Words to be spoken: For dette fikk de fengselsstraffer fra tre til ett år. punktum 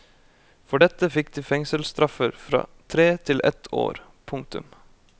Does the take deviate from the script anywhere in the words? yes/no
no